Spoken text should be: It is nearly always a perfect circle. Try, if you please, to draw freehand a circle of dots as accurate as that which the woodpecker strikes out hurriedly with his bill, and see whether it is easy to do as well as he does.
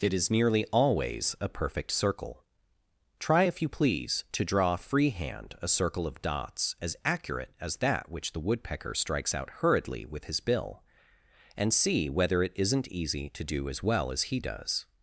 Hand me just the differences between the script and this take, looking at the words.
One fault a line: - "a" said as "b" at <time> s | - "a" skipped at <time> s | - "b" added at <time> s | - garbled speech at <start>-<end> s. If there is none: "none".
- "is" said as "isn't" at 12.5 s